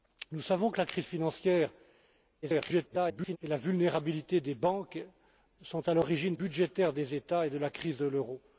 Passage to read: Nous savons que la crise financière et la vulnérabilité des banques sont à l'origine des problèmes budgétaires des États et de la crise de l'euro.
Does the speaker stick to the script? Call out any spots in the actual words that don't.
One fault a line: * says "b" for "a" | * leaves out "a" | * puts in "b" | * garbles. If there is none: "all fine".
* garbles
* leaves out "des problèmes"